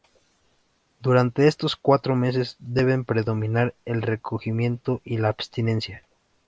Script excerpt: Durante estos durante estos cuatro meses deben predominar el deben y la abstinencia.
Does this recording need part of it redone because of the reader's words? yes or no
yes